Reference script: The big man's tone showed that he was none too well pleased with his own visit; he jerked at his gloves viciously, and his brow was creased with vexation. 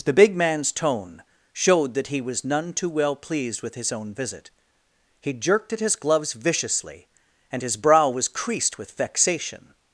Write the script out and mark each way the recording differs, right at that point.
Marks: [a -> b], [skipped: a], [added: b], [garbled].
The big man's tone showed that he was none too well pleased with his own visit; he jerked at his gloves viciously, and his brow was creased with vexation.